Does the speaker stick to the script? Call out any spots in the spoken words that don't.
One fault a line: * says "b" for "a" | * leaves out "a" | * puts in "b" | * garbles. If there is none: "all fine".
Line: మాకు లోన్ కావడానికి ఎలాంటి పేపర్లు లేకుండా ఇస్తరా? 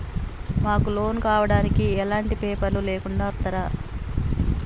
all fine